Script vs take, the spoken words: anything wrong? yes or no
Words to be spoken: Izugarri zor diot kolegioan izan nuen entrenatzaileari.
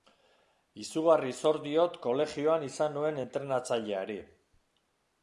no